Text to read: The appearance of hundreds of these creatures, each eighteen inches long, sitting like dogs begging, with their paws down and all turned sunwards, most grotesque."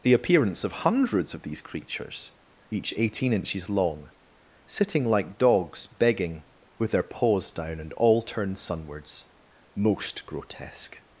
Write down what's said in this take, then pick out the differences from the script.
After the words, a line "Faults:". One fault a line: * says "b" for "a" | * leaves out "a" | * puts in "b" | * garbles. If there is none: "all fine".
The appearance of hundreds of these creatures, each eighteen inches long, sitting like dogs begging, with their paws down and all turned sunwards, most grotesque."
Faults:
all fine